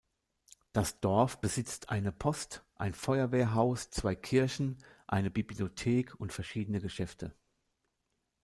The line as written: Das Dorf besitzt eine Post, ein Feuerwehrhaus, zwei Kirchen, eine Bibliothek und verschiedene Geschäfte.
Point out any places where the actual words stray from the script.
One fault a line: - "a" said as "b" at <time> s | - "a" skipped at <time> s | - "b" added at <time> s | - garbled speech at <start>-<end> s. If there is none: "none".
none